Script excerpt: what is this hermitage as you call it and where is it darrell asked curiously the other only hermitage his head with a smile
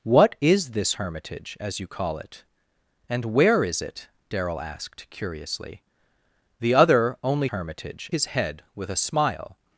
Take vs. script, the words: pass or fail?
pass